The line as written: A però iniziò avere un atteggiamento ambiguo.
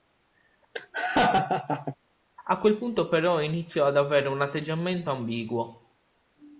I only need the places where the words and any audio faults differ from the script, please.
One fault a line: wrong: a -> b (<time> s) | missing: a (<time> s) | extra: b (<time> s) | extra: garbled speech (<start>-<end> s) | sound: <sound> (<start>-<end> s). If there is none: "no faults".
sound: laugh (0.7-2.0 s)
extra: quel punto (2.6 s)
extra: ad (3.9 s)